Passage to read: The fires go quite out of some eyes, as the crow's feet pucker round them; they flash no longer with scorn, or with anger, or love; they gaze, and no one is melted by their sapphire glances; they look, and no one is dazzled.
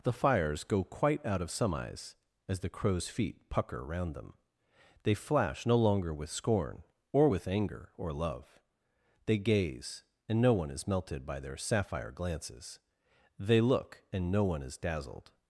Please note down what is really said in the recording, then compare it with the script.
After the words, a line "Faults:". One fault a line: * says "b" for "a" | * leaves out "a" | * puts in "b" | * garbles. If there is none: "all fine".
The fires go quite out of some eyes, as the crow's feet pucker round them; they flash no longer with scorn, or with anger, or love; they gaze, and no one is melted by their sapphire glances; they look, and no one is dazzled.
Faults:
all fine